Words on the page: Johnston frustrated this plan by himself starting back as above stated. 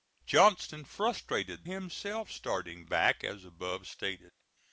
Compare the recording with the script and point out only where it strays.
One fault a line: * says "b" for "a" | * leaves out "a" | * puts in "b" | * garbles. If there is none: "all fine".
* leaves out "this plan by"